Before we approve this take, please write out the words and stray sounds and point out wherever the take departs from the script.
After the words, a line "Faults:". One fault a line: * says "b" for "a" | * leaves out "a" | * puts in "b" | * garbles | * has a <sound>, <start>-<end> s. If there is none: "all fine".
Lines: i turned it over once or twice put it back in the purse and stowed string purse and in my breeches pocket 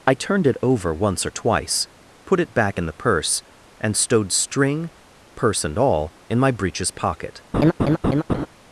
i turned it over once or twice put it back in the purse and stowed string purse and all in my breeches pocket
Faults:
* puts in "all"
* has a laugh, 7.5-8.5 s